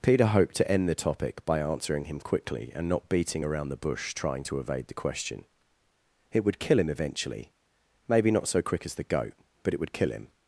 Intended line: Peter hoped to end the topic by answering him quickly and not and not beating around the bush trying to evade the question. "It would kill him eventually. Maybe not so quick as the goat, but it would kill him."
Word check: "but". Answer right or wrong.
right